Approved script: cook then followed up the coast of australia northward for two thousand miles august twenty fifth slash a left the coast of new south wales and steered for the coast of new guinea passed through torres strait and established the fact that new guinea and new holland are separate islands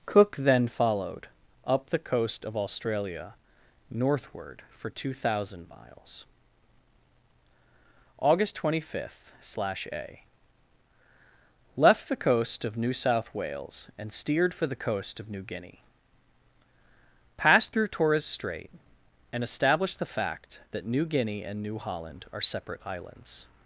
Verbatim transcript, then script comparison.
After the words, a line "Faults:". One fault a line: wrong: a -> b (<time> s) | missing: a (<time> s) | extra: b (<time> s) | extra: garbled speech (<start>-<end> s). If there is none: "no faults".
cook then followed up the coast of australia northward for two thousand miles august twenty fifth slash a left the coast of new south wales and steered for the coast of new guinea passed through torres strait and established the fact that new guinea and new holland are separate islands
Faults:
no faults